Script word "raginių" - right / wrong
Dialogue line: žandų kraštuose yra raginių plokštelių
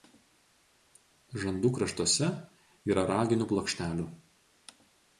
right